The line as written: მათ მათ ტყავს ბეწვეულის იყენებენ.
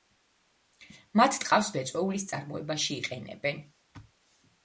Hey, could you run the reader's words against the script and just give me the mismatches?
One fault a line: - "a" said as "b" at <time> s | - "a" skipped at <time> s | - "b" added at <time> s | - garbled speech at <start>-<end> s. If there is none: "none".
- "მათ" skipped at 1.4 s
- "წარმოებაში" added at 2.3 s